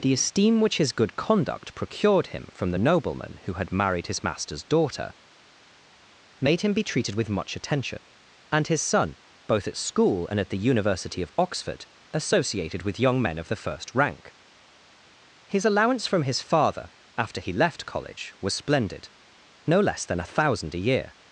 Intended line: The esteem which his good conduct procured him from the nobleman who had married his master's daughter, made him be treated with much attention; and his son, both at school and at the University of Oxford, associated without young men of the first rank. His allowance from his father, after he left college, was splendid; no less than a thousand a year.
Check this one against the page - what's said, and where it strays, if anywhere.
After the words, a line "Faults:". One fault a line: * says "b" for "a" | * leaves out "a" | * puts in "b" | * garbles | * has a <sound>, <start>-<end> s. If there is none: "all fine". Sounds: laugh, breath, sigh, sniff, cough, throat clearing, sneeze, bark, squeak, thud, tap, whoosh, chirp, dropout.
The esteem which his good conduct procured him from the nobleman who had married his master's daughter, made him be treated with much attention; and his son, both at school and at the University of Oxford, associated with young men of the first rank. His allowance from his father, after he left college, was splendid; no less than a thousand a year.
Faults:
* says "with" for "without"